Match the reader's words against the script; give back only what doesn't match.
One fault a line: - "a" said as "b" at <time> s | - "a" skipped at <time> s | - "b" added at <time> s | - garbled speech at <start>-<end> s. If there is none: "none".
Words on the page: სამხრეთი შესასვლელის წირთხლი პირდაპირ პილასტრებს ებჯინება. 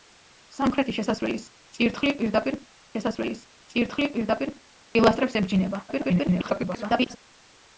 - "შესასვლელის წირთხლი პირდაპირ" added at 2.9 s
- garbled speech at 5.9-7.2 s